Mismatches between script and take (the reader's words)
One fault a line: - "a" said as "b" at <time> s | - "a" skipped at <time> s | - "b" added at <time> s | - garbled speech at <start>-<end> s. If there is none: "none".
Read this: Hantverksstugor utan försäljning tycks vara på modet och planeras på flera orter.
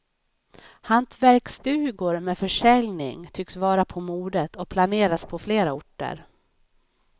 - "utan" said as "med" at 2.2 s